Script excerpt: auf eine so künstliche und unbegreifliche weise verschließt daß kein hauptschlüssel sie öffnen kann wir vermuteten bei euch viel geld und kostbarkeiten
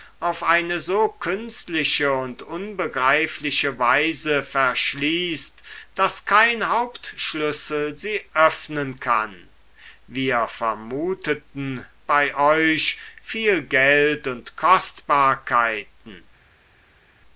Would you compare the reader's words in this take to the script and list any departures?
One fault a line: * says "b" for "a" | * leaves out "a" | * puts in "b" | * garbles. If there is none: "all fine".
all fine